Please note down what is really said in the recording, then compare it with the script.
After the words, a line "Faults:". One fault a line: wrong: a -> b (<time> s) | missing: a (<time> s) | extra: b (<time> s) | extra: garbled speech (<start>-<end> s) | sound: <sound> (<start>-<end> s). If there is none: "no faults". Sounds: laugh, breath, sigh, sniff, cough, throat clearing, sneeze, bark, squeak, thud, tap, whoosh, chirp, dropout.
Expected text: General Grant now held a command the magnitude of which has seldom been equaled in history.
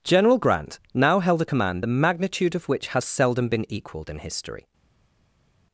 General Grant now held a command the magnitude of which has seldom been equaled in history.
Faults:
no faults